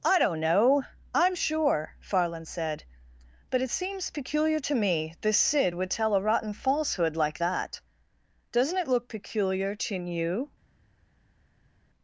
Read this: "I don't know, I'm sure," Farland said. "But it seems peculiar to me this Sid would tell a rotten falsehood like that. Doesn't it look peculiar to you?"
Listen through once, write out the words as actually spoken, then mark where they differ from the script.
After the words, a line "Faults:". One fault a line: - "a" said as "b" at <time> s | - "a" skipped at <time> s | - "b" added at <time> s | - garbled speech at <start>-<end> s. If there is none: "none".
"I don't know, I'm sure," Farland said. "But it seems peculiar to me this Sid would tell a rotten falsehood like that. Doesn't it look peculiar to you?"
Faults:
none